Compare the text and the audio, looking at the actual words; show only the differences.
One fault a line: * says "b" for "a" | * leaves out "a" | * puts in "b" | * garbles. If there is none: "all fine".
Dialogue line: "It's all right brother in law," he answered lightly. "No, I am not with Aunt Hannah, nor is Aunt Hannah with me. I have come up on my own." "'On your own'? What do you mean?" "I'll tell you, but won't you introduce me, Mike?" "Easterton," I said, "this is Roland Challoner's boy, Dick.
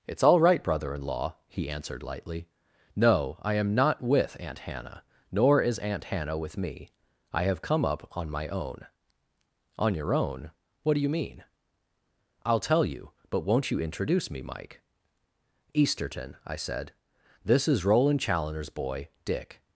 all fine